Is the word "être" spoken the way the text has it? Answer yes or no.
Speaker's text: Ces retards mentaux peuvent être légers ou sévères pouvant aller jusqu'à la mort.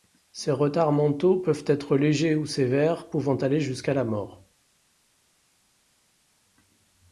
yes